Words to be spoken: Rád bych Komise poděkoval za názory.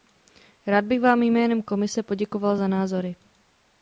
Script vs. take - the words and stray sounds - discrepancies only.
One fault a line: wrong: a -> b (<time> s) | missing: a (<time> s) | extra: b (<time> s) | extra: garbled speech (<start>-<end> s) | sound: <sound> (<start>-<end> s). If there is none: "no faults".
extra: vám jménem (1.0 s)